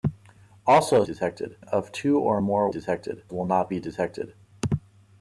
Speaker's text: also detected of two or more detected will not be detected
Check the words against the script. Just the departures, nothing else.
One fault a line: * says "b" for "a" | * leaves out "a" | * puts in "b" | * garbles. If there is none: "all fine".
all fine